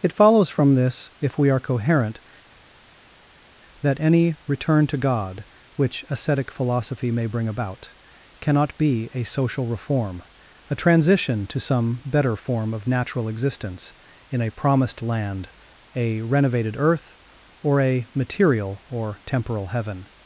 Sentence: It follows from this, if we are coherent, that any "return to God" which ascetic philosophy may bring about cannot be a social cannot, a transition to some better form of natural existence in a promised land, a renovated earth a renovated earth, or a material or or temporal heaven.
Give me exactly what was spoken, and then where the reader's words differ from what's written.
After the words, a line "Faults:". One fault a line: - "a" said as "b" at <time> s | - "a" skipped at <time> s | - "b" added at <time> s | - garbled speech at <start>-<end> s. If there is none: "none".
It follows from this, if we are coherent, that any "return to God" which ascetic philosophy may bring about cannot be a social reform, a transition to some better form of natural existence in a promised land, a renovated earth, or a material or temporal heaven.
Faults:
- "cannot" said as "reform" at 9.7 s
- "a renovated earth" skipped at 17.2 s
- "or" skipped at 19.2 s